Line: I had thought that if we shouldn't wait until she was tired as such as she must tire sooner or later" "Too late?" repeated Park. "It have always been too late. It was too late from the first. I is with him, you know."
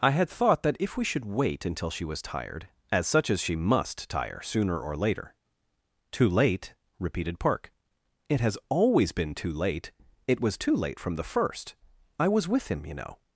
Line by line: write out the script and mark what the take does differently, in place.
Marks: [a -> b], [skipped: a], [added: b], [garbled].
I had thought that if we [shouldn't -> should] wait until she was tired as such as she must tire sooner or later" "Too late?" repeated Park. "It [have -> has] always been too late. It was too late from the first. I [is -> was] with him, you know."